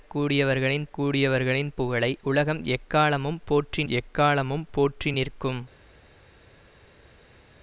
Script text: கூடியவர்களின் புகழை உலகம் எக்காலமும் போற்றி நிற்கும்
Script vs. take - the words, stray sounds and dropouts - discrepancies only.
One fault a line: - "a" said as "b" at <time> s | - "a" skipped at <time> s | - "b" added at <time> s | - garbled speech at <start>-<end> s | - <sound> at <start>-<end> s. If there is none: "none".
- "கூடியவர்களின்" added at 0.9 s
- "எக்காலமும் போற்றி" added at 3.9 s